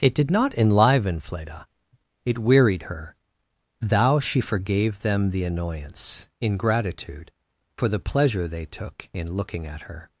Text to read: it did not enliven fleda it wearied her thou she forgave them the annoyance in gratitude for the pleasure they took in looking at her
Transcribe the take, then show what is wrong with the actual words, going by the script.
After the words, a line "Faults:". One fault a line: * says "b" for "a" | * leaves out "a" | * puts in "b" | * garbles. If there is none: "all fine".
it did not enliven fleda it wearied her thou she forgave them the annoyance in gratitude for the pleasure they took in looking at her
Faults:
all fine